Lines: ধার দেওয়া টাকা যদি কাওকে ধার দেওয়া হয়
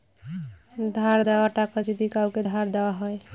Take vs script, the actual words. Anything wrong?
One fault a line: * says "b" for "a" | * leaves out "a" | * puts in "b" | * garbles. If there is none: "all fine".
all fine